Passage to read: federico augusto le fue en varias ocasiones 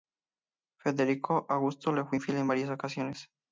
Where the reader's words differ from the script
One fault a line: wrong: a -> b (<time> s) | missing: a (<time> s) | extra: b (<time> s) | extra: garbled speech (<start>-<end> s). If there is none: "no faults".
extra: infiel (2.1 s)